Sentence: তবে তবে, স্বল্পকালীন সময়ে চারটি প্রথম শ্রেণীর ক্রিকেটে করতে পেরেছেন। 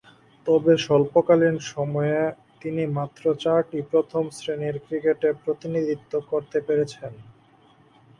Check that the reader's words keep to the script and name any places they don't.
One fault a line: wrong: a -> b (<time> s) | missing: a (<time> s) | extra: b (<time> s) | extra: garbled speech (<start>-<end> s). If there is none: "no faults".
missing: তবে (0.7 s)
extra: তিনি মাত্র (2.6 s)
extra: প্রতিনিধিত্ব (5.4 s)